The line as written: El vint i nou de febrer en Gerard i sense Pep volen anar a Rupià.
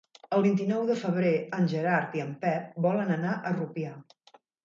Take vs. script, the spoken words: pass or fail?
fail